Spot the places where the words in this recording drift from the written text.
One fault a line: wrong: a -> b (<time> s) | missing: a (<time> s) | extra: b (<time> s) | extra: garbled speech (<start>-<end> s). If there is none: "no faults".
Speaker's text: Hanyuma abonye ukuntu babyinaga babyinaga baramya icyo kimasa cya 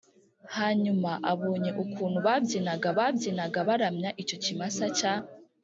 no faults